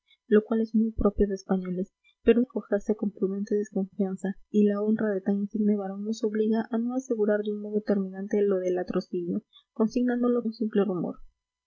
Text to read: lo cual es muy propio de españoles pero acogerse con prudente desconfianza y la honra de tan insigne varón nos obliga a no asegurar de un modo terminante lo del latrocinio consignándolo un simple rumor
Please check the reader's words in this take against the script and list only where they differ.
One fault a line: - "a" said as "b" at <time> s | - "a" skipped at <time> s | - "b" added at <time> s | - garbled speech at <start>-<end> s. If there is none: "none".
none